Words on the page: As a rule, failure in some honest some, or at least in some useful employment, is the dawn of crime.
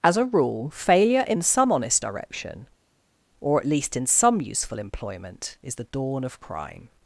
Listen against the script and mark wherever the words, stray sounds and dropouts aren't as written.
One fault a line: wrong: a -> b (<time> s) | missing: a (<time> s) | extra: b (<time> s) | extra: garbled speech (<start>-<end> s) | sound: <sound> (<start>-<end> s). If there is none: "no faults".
wrong: some -> direction (2.0 s)